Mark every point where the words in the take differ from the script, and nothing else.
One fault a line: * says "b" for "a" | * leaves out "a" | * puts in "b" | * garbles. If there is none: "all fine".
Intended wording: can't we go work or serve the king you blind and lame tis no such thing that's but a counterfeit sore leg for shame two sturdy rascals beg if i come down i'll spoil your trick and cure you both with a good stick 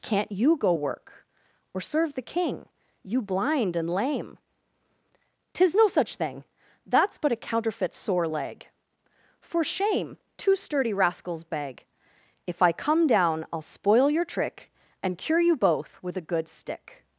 * says "you" for "we"